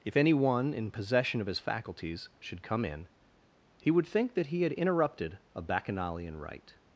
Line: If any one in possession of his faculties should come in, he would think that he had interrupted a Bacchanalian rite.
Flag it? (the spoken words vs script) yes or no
no